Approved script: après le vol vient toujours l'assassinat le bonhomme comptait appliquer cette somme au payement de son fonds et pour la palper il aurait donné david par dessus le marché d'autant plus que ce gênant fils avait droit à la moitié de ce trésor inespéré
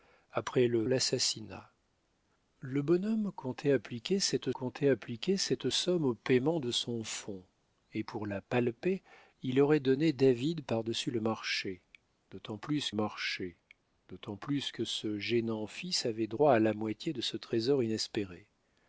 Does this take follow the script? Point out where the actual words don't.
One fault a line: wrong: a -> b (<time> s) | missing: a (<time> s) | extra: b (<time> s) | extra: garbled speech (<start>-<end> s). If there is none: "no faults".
missing: vol vient toujours (0.8 s)
extra: comptait appliquer cette (4.5 s)
extra: marché d'autant plus (12.9 s)